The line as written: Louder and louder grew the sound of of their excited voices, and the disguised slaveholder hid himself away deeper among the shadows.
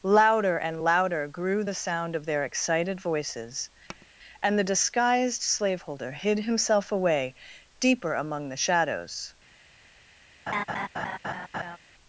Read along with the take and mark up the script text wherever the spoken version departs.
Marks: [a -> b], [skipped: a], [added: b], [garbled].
Louder and louder grew the sound of [skipped: of] their excited voices, and the disguised slaveholder hid himself away deeper among the shadows.